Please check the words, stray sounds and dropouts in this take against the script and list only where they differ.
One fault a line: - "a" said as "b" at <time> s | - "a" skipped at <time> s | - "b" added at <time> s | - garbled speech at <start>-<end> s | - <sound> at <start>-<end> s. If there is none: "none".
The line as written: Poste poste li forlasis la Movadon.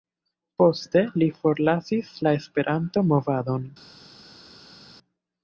- "poste" skipped at 1.0 s
- "Esperanto" added at 2.4 s